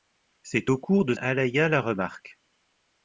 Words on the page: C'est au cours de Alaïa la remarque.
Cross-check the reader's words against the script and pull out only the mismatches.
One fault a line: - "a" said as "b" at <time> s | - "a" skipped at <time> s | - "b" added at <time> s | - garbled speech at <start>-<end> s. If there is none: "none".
none